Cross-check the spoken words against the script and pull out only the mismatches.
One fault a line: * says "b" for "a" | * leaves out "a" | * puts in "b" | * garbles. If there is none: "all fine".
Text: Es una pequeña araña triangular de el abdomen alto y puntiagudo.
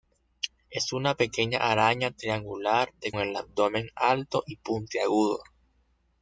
all fine